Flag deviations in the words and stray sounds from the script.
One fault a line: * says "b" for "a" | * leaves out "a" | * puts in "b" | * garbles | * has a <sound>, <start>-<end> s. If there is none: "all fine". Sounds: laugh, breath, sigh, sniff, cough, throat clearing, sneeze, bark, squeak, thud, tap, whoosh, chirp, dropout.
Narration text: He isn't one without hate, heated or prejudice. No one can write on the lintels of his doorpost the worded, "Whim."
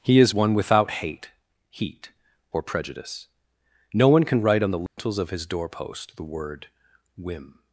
* says "is" for "isn't"
* says "heat" for "heated"
* has a dropout, 4.9-5.0 s
* says "word" for "worded"